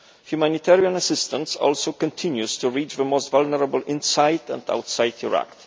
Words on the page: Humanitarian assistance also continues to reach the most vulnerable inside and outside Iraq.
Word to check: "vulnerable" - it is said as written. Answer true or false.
true